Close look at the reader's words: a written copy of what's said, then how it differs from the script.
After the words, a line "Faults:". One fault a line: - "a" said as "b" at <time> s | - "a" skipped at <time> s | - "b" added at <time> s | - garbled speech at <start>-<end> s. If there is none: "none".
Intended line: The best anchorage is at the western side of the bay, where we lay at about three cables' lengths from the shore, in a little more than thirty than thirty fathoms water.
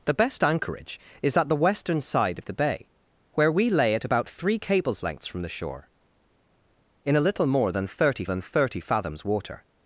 The best anchorage is at the western side of the bay, where we lay at about three cables' lengths from the shore, in a little more than thirty than thirty fathoms water.
Faults:
none